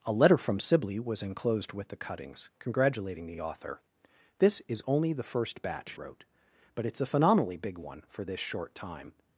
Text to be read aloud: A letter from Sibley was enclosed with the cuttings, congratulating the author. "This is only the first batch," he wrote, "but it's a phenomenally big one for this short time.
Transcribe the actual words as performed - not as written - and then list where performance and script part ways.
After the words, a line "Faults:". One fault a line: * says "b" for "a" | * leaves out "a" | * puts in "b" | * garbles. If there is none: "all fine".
A letter from Sibley was enclosed with the cuttings, congratulating the the author. "This is only the first batch," wrote, "but it's a phenomenally big one for this short time.
Faults:
* puts in "the"
* leaves out "he"